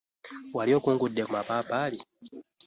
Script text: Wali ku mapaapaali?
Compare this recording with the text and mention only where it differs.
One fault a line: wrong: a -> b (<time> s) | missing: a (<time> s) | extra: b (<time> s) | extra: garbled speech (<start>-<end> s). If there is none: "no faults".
extra: okungudde (0.8 s)